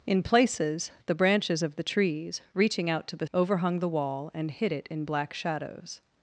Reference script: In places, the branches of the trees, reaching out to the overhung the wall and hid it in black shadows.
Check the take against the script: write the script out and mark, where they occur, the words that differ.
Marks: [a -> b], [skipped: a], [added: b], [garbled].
In places, the branches of the trees, reaching out to the overhung the wall and hid it in black shadows.